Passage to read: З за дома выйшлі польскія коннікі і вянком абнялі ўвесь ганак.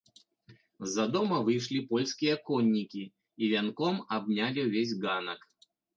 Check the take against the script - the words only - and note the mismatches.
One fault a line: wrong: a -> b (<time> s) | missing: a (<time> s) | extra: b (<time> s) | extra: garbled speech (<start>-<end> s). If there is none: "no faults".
no faults